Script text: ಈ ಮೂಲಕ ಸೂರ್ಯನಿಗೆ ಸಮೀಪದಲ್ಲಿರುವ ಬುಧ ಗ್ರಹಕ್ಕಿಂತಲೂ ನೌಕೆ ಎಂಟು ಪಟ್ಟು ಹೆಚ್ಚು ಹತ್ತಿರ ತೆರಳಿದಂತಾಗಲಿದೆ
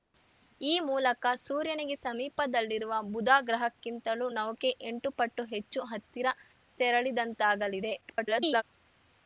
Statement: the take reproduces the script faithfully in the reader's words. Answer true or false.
false